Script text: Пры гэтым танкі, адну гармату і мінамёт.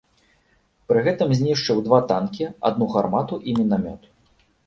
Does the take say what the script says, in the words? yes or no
no